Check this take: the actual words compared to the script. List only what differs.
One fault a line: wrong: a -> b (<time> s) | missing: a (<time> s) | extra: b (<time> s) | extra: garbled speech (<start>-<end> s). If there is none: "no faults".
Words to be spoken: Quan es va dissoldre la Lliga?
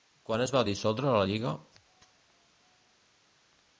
no faults